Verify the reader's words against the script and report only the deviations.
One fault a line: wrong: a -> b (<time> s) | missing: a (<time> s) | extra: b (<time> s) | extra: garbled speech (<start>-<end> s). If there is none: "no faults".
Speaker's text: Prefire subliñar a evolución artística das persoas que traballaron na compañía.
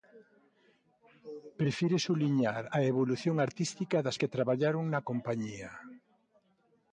missing: persoas (4.2 s)